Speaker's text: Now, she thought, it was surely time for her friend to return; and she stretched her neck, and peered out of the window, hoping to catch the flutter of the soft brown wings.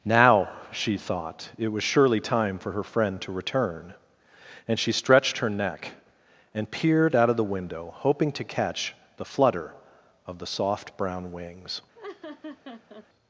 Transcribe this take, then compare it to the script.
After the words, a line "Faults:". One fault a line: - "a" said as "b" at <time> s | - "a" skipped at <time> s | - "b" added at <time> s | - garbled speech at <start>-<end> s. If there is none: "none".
Now, she thought, it was surely time for her friend to return; and she stretched her neck, and peered out of the window, hoping to catch the flutter of the soft brown wings.
Faults:
none